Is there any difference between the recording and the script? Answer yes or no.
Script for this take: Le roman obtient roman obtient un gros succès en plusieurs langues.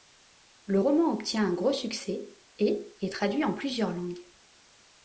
yes